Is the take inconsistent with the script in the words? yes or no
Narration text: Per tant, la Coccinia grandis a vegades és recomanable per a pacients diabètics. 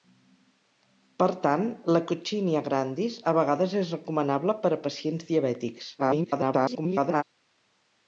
yes